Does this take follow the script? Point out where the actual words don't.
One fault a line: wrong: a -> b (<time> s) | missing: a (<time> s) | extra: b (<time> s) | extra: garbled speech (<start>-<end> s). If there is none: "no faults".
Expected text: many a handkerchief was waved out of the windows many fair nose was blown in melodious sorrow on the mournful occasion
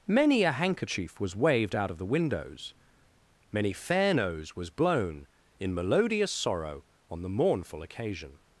no faults